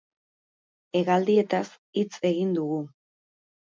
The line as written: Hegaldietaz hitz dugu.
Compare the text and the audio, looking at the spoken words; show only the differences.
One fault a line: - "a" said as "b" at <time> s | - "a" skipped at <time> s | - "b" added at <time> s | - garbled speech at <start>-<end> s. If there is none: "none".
- "egin" added at 2.3 s